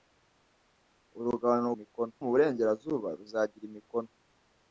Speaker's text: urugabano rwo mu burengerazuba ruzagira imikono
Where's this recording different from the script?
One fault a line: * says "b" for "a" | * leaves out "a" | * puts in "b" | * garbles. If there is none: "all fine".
* says "imikono" for "rwo"